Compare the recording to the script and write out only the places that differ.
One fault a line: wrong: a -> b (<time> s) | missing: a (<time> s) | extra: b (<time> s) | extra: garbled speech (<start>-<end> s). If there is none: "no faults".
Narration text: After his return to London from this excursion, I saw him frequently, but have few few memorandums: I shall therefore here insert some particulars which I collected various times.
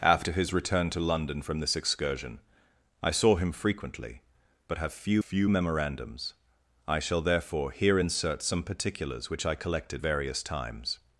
no faults